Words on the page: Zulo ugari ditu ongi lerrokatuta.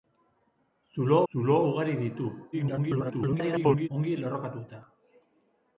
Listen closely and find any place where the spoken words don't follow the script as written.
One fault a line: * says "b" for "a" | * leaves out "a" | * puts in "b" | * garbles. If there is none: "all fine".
* puts in "zulo"
* garbles